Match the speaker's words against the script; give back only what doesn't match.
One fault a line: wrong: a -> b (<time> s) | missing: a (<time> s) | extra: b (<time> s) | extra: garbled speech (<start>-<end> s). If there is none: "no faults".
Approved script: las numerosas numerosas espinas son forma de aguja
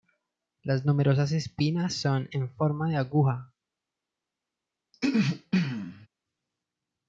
missing: numerosas (1.3 s)
extra: en (2.3 s)